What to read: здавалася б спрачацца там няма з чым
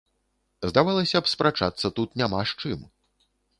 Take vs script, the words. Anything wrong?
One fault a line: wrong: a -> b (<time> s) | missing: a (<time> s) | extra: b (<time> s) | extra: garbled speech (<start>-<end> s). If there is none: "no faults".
wrong: там -> тут (2.0 s)